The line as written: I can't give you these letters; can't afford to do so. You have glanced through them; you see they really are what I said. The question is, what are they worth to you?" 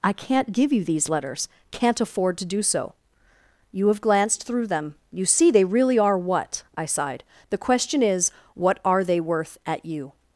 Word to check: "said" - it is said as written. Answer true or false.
false